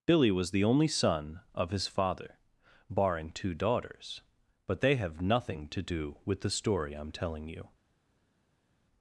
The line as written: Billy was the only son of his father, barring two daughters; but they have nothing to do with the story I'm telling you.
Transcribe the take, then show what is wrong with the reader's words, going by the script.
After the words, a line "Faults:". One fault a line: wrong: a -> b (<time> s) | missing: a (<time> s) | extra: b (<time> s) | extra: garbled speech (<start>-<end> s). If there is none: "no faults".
Billy was the only son of his father, barring two daughters; but they have nothing to do with the story I'm telling you.
Faults:
no faults